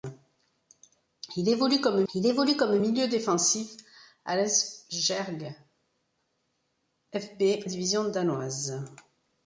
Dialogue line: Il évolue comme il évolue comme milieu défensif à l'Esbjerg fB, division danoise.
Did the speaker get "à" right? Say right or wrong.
right